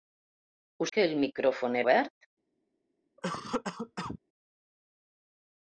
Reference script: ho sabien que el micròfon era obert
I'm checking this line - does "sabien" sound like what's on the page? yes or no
no